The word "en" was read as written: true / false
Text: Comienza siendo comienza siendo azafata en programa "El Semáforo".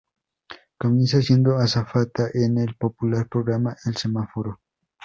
false